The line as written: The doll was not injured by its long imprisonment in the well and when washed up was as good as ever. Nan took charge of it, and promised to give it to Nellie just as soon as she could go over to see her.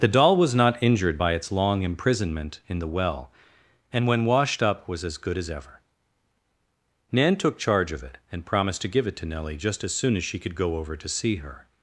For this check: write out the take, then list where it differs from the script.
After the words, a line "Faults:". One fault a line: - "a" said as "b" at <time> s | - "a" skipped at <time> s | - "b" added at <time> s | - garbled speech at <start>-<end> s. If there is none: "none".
The doll was not injured by its long imprisonment in the well and when washed up was as good as ever. Nan took charge of it, and promised to give it to Nellie just as soon as she could go over to see her.
Faults:
none